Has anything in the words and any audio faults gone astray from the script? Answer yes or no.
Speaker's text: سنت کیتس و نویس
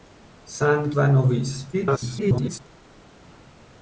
yes